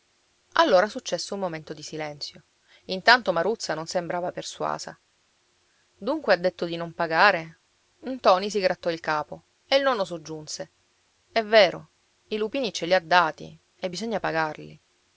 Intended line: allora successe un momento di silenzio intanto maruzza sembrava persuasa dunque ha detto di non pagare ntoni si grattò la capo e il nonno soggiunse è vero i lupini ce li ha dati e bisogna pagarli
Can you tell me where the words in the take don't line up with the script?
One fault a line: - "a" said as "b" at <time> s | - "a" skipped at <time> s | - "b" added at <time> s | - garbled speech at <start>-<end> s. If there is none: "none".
- "non" added at 3.8 s
- "la" said as "il" at 8.9 s